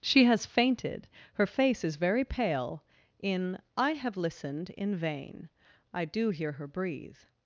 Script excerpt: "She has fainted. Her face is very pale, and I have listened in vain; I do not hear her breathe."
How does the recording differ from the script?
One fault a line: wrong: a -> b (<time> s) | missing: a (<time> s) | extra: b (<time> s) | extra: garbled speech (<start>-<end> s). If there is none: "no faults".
wrong: and -> in (3.2 s)
missing: not (6.3 s)